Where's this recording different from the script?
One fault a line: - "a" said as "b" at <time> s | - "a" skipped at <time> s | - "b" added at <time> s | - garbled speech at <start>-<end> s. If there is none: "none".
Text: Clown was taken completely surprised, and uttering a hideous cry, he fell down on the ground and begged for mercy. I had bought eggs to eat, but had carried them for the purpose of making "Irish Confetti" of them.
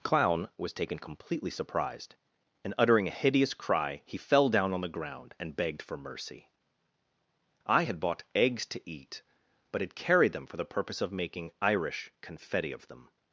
none